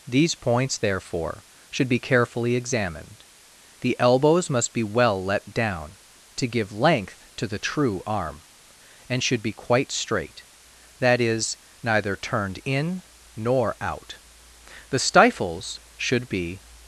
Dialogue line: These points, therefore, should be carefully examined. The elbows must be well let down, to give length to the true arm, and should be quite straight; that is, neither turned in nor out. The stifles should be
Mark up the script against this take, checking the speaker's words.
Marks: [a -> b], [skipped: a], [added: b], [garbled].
These points, therefore, should be carefully examined. The elbows must be well let down, to give length to the true arm, and should be quite straight; that is, neither turned in nor out. The stifles should be